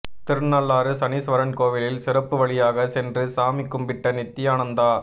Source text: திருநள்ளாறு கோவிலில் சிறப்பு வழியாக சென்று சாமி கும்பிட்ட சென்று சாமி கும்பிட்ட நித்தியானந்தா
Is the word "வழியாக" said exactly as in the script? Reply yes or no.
yes